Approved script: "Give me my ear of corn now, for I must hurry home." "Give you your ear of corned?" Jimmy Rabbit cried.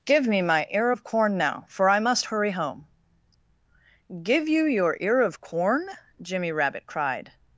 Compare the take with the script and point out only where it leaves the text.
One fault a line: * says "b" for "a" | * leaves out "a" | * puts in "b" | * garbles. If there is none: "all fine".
* says "corn" for "corned"